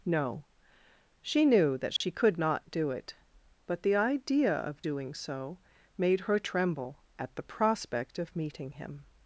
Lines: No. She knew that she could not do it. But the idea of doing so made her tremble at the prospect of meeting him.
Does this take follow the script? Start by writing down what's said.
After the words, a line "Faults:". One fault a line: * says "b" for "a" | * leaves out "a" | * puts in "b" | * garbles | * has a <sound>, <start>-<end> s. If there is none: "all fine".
No. She knew that she could not do it. But the idea of doing so made her tremble at the prospect of meeting him.
Faults:
* has a dropout, 2.0-2.0 s